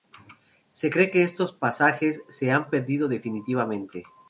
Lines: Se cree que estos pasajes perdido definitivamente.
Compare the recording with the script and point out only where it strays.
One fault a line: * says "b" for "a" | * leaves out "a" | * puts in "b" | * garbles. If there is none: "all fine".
* puts in "se han"